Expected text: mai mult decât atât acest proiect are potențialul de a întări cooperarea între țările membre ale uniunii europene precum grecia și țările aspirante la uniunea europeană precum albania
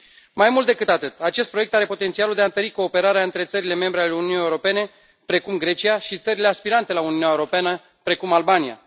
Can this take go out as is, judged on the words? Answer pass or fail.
pass